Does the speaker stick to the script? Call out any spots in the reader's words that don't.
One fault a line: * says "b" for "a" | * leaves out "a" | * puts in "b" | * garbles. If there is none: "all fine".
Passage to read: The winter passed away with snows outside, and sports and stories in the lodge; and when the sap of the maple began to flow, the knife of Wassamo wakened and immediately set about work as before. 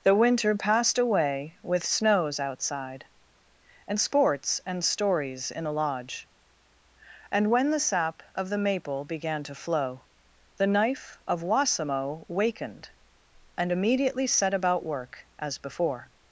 all fine